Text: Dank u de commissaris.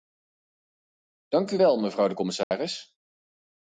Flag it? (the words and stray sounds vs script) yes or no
yes